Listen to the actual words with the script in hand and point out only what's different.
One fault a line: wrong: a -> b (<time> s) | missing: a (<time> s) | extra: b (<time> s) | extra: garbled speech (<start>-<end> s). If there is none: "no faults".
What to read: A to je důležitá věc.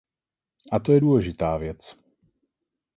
no faults